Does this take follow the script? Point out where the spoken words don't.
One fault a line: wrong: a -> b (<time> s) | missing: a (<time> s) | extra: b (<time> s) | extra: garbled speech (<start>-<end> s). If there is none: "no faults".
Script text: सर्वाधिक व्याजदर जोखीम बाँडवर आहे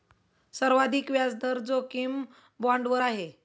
no faults